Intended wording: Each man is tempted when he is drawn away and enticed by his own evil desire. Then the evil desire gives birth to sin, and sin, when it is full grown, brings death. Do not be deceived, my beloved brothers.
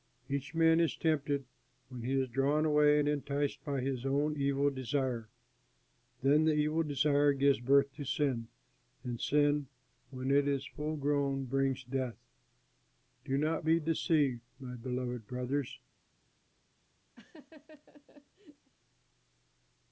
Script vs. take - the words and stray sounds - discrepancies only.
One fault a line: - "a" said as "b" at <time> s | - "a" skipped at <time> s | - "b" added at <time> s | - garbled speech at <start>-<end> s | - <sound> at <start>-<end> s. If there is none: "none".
- laugh at 17.2-18.7 s